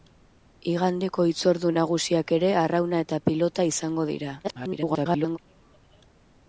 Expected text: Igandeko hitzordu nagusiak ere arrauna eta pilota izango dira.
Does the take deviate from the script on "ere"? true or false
false